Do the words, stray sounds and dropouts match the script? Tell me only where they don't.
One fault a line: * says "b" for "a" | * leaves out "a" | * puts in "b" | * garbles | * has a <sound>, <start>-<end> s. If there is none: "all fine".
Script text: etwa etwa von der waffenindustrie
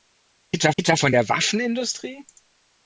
all fine